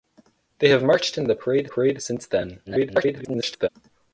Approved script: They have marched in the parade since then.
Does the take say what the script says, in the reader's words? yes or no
no